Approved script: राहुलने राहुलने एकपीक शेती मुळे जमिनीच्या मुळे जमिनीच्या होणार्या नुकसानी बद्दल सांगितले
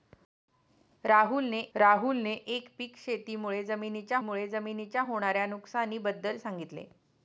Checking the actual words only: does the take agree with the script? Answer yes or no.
yes